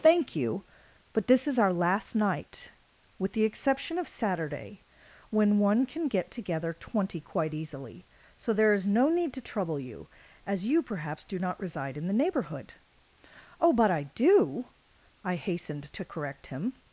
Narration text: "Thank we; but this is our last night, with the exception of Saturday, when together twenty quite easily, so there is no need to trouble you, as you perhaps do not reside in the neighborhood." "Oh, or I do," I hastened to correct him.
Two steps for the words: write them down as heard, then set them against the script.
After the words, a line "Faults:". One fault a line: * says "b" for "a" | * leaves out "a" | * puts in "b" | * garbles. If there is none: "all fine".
"Thank you; but this is our last night, with the exception of Saturday, when one can get together twenty quite easily, so there is no need to trouble you, as you perhaps do not reside in the neighborhood." "Oh, but I do," I hastened to correct him.
Faults:
* says "you" for "we"
* puts in "one can get"
* says "but" for "or"